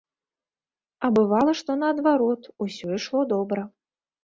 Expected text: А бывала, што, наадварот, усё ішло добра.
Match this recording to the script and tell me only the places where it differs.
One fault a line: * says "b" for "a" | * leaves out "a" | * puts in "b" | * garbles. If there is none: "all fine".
all fine